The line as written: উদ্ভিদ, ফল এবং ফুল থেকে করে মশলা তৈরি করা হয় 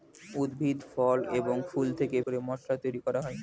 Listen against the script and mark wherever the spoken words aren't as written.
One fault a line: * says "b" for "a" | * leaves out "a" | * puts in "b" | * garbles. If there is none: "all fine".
all fine